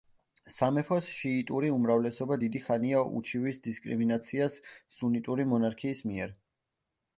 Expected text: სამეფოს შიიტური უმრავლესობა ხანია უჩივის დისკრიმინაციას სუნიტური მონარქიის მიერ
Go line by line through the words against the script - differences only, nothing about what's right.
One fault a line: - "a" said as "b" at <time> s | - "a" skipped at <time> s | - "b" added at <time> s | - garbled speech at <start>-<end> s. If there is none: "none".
- "დიდი" added at 2.4 s